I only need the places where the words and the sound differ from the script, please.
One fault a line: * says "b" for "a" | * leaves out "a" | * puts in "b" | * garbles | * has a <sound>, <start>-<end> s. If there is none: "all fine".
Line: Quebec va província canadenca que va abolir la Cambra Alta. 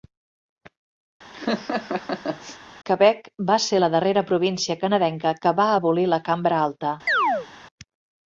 * has a laugh, 1.3-2.6 s
* puts in "ser la darrera"
* has a chirp, 7.1-7.5 s